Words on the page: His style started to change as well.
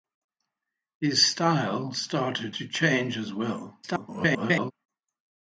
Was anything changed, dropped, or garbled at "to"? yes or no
no